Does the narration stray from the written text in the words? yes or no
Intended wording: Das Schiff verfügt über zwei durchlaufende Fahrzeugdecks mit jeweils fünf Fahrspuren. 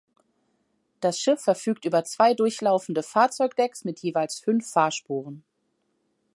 no